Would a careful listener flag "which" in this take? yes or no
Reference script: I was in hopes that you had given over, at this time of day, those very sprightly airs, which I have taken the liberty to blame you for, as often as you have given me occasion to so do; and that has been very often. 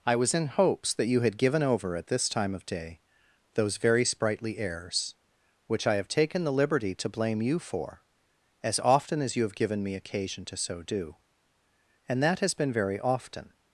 no